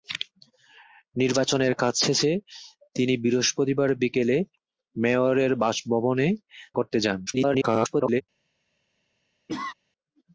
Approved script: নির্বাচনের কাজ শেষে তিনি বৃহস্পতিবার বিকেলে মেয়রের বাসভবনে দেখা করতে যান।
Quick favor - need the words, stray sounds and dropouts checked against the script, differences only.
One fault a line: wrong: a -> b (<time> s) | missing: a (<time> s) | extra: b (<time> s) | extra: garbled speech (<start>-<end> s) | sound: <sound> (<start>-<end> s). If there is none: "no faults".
missing: দেখা (6.3 s)
extra: garbled speech (7.3-8.2 s)
sound: cough (9.5-9.7 s)